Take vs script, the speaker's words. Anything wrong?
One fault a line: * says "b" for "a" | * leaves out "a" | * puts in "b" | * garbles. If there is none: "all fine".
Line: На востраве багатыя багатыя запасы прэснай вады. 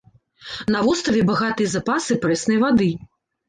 * leaves out "багатыя"